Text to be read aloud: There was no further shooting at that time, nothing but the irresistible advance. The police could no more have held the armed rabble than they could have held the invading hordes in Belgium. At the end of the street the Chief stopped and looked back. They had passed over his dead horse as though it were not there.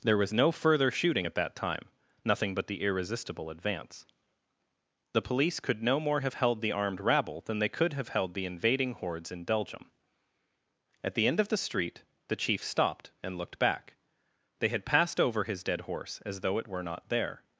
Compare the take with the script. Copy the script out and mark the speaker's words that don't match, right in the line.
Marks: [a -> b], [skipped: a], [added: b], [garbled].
There was no further shooting at that time, nothing but the irresistible advance. The police could no more have held the armed rabble than they could have held the invading hordes in Belgium. At the end of the street the Chief stopped and looked back. They had passed over his dead horse as though it were not there.